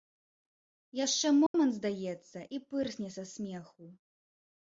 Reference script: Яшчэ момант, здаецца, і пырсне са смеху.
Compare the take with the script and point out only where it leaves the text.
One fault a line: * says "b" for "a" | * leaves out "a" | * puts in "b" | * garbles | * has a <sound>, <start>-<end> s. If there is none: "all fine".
* has a dropout, 1.5-1.5 s